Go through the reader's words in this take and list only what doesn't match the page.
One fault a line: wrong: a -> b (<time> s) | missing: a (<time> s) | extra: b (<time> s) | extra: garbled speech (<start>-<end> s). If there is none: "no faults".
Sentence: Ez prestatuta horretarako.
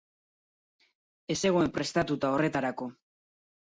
extra: zegoen (1.5 s)